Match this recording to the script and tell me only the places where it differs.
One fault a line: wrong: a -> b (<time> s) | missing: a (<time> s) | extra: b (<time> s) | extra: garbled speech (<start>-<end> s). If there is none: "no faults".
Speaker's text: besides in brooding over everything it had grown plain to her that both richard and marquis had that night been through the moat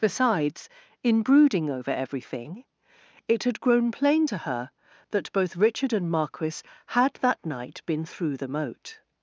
no faults